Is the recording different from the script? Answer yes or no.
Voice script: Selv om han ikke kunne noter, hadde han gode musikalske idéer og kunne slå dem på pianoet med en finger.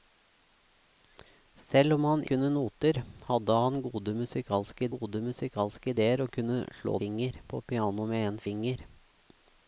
yes